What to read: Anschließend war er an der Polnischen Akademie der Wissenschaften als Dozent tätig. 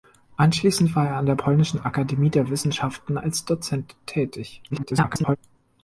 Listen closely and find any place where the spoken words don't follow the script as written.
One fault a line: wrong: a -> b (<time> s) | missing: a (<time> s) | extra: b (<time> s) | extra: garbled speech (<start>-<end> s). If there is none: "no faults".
extra: garbled speech (4.7-5.4 s)